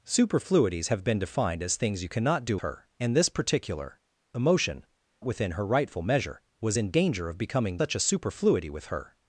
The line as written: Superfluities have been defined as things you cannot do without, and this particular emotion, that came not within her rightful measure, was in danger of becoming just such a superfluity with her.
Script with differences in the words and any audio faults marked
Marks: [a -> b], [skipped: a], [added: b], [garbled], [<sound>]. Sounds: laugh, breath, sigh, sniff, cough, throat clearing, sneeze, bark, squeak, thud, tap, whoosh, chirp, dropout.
Superfluities have been defined as things you cannot do [without, -> her] and this particular emotion, [skipped: that came not] within her rightful measure, was in danger of becoming [skipped: just] such a superfluity with her.